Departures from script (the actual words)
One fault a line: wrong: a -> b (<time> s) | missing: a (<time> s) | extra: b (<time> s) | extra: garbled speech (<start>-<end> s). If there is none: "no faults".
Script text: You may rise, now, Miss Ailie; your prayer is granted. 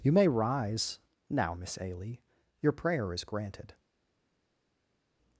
no faults